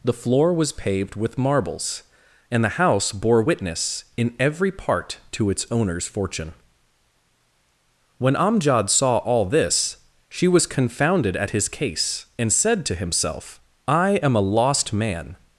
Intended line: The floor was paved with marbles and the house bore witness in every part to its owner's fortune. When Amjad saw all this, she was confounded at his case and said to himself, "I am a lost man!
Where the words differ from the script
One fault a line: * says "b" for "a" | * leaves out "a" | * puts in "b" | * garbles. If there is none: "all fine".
all fine